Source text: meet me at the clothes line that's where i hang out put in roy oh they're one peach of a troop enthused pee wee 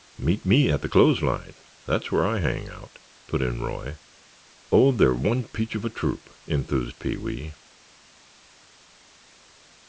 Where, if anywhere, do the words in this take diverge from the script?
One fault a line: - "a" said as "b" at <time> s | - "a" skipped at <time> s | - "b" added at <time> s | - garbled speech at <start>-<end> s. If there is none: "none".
none